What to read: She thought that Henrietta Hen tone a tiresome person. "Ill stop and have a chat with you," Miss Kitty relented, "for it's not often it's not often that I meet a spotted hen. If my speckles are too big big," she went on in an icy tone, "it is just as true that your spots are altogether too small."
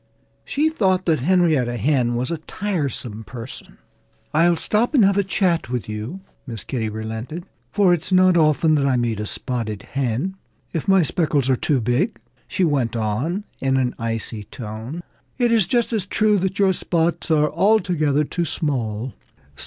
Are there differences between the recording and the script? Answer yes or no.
yes